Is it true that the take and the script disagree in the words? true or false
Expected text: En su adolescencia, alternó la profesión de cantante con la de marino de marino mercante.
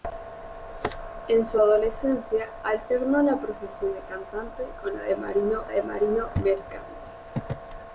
false